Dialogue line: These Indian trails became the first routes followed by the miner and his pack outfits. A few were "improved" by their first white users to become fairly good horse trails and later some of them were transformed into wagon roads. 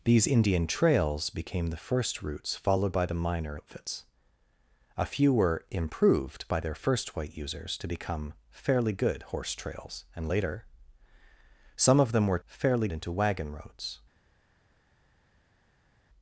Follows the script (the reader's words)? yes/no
no